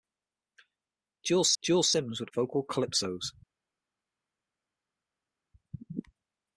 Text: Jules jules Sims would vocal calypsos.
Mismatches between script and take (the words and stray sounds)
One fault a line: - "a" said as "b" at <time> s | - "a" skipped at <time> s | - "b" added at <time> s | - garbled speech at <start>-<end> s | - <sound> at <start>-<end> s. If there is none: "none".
none